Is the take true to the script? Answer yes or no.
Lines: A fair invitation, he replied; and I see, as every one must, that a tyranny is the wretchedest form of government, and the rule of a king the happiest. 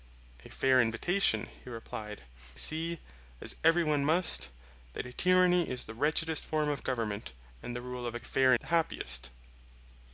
no